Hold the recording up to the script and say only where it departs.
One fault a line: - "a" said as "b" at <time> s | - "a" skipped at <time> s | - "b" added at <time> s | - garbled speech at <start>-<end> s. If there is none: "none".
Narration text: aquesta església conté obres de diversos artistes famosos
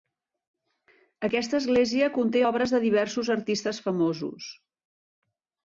none